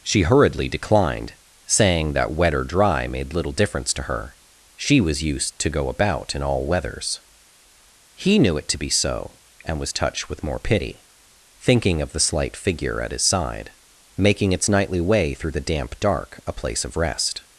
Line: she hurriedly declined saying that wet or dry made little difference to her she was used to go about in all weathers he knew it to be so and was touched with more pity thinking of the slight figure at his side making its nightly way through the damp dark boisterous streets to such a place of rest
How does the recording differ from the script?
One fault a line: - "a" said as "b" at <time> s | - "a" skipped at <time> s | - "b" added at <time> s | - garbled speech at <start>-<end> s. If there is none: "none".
- "boisterous streets to such" skipped at 16.4 s